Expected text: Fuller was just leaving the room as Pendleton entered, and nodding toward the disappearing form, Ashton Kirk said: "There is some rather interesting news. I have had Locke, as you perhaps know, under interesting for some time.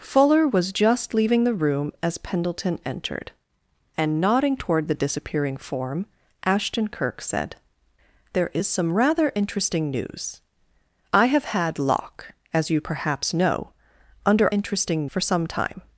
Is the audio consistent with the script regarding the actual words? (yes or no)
yes